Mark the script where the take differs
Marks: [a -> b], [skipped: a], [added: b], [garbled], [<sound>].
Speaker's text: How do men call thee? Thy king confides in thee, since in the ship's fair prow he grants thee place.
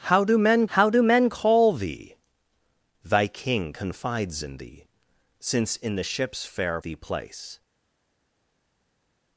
How do men [added: how do men] call thee? Thy king confides in thee, since in the ship's fair [skipped: prow he grants] thee place.